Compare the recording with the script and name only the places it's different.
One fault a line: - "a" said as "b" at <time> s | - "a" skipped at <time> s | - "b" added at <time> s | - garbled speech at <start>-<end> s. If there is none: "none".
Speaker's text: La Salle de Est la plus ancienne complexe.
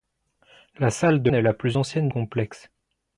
none